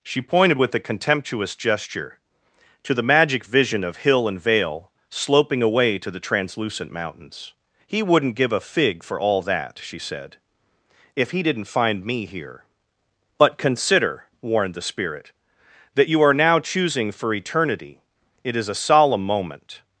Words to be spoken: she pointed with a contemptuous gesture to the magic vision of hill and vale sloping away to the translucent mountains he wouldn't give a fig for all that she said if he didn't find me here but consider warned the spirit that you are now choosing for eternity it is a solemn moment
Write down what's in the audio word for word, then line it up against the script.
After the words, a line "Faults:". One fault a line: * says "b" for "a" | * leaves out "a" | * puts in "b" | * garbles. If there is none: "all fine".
she pointed with a contemptuous gesture to the magic vision of hill and vale sloping away to the translucent mountains he wouldn't give a fig for all that she said if he didn't find me here but consider warned the spirit that you are now choosing for eternity it is a solemn moment
Faults:
all fine